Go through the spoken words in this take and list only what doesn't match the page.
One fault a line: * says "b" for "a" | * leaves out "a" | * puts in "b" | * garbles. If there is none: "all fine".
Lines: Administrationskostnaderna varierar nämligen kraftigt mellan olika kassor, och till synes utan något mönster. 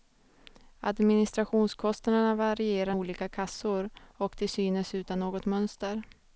* leaves out "nämligen kraftigt mellan"